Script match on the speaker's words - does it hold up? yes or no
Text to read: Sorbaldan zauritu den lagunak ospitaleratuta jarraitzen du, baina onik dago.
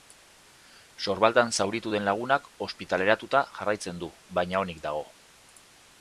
yes